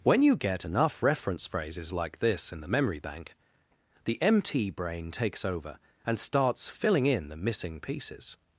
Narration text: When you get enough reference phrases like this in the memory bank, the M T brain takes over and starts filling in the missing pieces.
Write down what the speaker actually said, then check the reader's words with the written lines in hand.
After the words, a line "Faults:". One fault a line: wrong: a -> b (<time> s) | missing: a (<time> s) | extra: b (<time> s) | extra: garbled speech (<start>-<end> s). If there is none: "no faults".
When you get enough reference phrases like this in the memory bank, the M T brain takes over and starts filling in the missing pieces.
Faults:
no faults